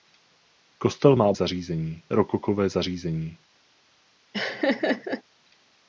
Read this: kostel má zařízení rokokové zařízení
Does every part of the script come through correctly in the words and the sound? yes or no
no